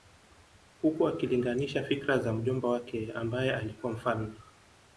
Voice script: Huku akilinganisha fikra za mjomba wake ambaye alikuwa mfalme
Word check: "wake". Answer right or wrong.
right